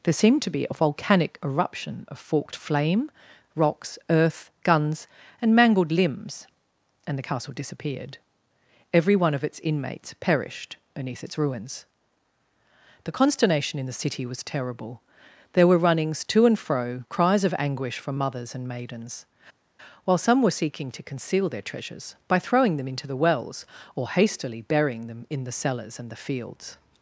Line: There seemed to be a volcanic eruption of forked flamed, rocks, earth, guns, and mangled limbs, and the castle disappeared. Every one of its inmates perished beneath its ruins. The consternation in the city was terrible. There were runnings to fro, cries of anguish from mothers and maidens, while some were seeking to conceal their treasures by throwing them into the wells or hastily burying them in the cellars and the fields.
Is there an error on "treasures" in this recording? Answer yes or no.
no